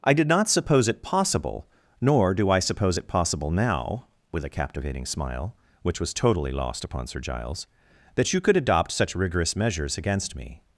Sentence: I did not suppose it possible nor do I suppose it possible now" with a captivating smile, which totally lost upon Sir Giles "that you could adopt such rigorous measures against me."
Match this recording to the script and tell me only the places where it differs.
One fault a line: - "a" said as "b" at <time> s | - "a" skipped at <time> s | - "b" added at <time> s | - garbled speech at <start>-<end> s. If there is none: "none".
- "was" added at 6.0 s